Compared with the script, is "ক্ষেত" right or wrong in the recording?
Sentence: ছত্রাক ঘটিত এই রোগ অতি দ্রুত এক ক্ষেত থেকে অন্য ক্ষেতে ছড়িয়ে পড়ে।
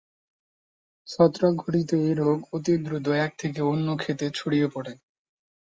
wrong